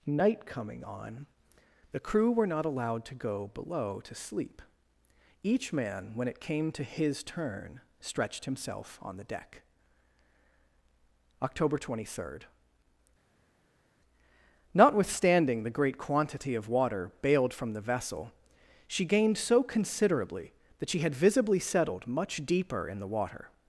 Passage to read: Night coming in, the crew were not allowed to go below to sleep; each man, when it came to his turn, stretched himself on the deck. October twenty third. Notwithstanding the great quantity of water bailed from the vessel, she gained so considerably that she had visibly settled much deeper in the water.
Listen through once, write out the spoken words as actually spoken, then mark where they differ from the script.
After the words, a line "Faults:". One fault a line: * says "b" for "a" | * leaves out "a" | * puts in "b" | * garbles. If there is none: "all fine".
Night coming on, the crew were not allowed to go below to sleep; each man, when it came to his turn, stretched himself on the deck. October twenty third. Notwithstanding the great quantity of water bailed from the vessel, she gained so considerably that she had visibly settled much deeper in the water.
Faults:
* says "on" for "in"